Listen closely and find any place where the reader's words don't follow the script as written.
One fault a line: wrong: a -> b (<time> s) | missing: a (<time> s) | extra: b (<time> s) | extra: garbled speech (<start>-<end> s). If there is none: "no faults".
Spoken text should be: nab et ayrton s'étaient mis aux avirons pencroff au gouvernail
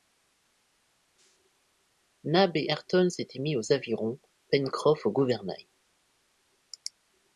no faults